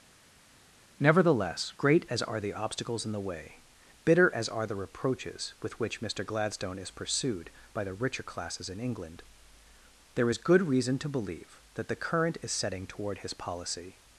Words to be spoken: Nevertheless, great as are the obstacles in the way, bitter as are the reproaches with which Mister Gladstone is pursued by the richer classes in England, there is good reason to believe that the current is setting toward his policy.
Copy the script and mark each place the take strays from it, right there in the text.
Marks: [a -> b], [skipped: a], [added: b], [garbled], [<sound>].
Nevertheless, great as are the obstacles in the way, bitter as are the reproaches with which Mister Gladstone is pursued by the richer classes in England, there is good reason to believe that the current is setting toward his policy.